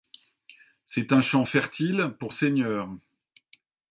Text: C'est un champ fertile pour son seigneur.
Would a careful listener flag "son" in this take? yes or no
yes